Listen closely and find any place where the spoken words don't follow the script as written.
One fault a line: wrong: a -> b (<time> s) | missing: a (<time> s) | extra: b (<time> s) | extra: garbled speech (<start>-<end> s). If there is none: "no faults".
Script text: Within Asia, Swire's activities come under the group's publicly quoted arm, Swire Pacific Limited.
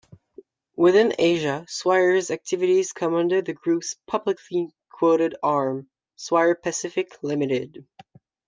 no faults